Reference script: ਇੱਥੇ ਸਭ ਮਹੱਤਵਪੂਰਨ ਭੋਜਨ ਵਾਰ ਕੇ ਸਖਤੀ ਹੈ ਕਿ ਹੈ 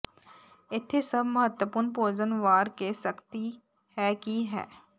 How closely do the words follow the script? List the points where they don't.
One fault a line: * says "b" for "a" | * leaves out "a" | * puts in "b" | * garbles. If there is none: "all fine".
all fine